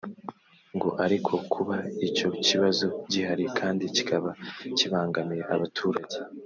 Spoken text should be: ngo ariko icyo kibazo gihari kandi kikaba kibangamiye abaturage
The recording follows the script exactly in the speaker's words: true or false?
false